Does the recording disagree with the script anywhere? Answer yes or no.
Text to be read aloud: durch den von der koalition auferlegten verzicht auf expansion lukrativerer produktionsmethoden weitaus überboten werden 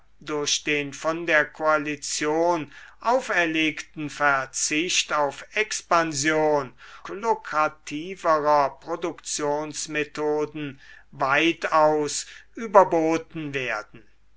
no